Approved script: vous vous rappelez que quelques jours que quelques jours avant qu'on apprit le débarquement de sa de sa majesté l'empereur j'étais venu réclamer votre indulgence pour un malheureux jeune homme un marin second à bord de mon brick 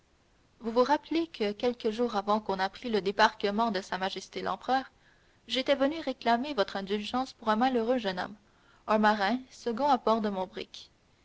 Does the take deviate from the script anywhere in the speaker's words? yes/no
yes